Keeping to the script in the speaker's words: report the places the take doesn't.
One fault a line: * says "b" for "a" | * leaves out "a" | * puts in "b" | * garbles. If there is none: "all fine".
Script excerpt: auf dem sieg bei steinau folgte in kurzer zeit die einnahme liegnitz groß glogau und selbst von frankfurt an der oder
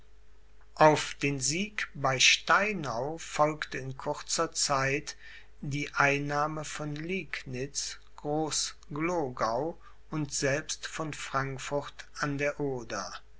* says "den" for "dem"
* puts in "von"